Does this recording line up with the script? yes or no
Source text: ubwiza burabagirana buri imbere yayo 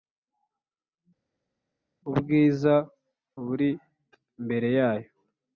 no